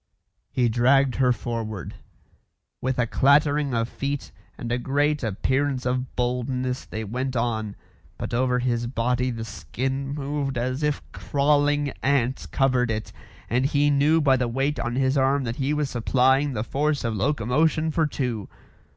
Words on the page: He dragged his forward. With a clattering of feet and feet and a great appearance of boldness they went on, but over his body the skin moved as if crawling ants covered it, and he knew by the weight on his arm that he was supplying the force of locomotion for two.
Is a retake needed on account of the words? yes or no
yes